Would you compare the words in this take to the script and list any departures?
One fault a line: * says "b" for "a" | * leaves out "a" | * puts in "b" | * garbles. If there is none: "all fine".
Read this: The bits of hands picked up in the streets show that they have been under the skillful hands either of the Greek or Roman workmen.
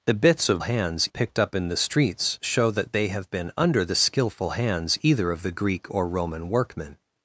all fine